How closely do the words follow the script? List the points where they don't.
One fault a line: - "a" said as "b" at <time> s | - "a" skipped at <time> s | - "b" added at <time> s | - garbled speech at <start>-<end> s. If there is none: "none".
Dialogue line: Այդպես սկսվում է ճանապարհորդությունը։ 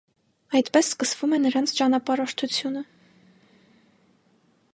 - "նրանց" added at 1.4 s